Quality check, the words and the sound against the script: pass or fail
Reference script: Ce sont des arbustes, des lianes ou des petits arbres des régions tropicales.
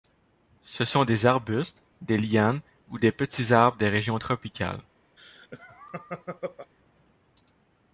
fail